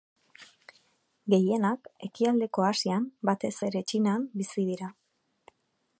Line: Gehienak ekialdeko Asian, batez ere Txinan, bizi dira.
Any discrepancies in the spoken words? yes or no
no